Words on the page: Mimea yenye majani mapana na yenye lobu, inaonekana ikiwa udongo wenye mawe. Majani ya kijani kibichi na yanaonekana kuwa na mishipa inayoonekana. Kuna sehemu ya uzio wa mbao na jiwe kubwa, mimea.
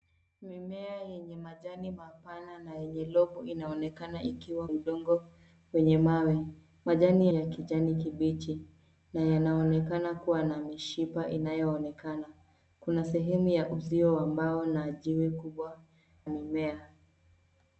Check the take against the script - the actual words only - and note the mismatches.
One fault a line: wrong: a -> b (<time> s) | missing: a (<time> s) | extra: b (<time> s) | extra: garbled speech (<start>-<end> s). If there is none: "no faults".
no faults